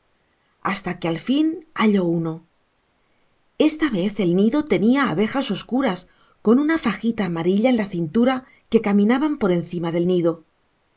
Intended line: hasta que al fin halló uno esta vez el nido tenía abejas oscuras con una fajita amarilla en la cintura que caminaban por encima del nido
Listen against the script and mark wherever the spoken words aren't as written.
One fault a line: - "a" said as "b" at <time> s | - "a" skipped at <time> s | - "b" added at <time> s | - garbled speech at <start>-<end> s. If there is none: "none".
none